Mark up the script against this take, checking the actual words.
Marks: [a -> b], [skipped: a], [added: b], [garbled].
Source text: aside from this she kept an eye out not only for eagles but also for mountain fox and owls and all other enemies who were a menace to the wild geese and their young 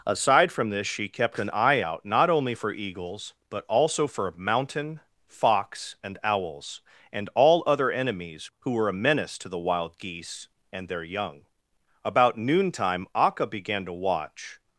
aside from this she kept an eye out not only for eagles but also for mountain fox and owls and all other enemies who were a menace to the wild geese and their young [added: about noontime akka began to watch]